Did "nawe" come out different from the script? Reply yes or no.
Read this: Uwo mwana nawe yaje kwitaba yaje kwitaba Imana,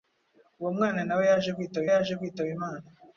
no